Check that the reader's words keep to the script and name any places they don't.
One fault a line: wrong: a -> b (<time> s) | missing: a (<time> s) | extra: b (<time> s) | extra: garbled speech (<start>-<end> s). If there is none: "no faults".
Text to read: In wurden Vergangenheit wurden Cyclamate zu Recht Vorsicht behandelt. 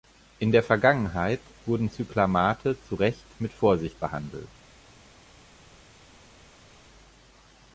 wrong: wurden -> der (0.5 s)
extra: mit (3.4 s)